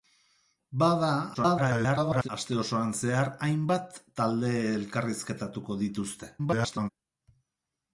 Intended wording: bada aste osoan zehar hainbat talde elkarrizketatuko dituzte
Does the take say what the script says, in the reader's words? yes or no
no